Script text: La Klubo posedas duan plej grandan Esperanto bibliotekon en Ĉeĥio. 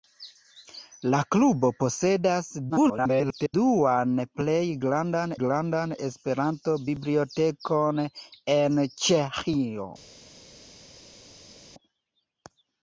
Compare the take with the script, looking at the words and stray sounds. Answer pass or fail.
fail